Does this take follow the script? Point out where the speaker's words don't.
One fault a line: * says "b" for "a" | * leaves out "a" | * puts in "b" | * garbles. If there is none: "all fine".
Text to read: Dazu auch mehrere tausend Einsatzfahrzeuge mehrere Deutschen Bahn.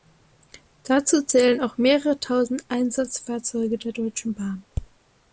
* puts in "zählen"
* says "der" for "mehrere"